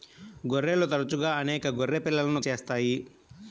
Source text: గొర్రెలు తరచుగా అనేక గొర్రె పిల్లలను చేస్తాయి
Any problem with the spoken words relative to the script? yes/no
no